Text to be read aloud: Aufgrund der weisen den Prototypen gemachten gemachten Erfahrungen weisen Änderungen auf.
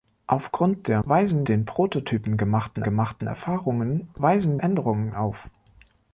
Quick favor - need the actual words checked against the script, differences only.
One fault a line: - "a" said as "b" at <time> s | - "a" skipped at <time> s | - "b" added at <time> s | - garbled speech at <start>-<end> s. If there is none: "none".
none